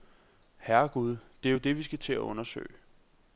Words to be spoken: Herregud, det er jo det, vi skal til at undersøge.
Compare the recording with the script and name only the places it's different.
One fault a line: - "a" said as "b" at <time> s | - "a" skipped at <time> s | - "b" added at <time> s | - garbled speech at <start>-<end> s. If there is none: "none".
none